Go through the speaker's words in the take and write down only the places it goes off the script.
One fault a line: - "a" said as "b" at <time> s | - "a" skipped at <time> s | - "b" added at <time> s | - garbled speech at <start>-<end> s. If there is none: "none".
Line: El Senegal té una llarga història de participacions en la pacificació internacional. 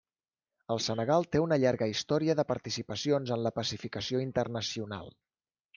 none